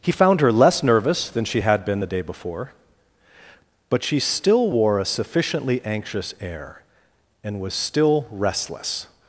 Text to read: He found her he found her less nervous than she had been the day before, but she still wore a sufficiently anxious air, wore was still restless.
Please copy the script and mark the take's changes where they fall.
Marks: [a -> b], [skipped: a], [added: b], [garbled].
He found her [skipped: he found her] less nervous than she had been the day before, but she still wore a sufficiently anxious air, [wore -> and] was still restless.